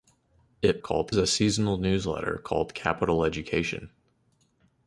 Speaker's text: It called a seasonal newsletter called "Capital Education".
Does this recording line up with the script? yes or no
yes